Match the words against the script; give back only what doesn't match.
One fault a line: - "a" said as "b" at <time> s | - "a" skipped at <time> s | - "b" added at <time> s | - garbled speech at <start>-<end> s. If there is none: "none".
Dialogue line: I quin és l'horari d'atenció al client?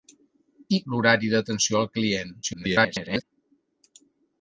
- "quin és" skipped at 0.8 s
- garbled speech at 2.4-3.2 s